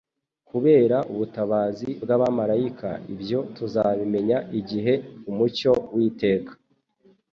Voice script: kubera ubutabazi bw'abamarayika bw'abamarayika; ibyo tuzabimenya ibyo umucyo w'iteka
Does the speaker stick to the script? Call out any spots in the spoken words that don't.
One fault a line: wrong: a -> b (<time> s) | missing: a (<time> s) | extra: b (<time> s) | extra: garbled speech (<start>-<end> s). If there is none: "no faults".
missing: bw'abamarayika (2.9 s)
wrong: ibyo -> igihe (4.6 s)